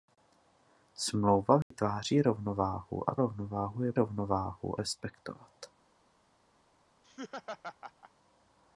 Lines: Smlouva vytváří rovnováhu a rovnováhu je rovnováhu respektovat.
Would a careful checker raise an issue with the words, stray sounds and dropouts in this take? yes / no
yes